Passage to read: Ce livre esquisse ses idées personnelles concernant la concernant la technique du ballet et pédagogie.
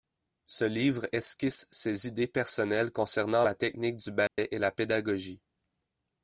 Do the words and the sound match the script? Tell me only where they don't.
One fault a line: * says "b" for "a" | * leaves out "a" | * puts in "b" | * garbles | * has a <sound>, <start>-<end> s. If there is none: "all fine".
* leaves out "concernant la"
* has a dropout, 4.3-4.4 s
* puts in "la"